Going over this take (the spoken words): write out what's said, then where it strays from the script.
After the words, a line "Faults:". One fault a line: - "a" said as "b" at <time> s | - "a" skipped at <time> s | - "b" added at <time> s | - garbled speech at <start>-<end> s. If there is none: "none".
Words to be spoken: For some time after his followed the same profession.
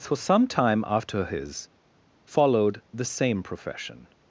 For some time after his followed the same profession.
Faults:
none